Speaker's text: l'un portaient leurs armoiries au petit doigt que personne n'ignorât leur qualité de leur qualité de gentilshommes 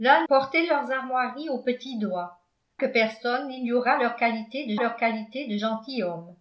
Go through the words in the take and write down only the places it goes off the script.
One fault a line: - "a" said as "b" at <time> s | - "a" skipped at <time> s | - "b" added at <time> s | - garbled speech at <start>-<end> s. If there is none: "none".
none